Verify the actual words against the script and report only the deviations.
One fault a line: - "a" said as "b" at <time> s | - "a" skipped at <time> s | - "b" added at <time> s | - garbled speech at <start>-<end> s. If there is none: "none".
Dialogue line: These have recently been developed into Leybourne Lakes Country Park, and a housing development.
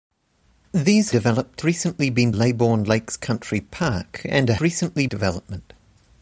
- "have" said as "developed" at 1.1 s
- "developed into" skipped at 2.3 s
- "housing" said as "recently" at 4.6 s